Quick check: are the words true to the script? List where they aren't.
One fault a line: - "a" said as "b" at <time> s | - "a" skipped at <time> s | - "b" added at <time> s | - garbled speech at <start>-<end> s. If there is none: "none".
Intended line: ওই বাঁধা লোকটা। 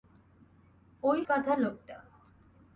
none